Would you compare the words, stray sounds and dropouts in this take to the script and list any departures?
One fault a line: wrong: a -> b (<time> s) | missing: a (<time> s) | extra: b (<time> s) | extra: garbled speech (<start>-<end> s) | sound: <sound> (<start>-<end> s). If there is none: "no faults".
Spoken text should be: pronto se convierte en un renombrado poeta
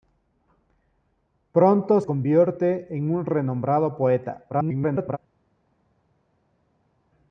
missing: se (2.0 s)
extra: garbled speech (4.5-5.2 s)